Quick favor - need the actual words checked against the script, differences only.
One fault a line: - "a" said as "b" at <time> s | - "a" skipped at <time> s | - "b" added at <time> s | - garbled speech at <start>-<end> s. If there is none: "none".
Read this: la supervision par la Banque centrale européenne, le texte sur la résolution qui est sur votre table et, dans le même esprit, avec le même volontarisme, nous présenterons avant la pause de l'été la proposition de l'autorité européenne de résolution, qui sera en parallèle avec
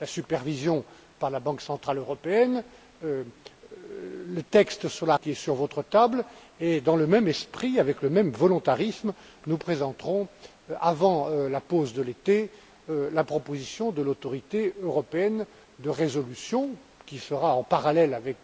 - "résolution" skipped at 5.2 s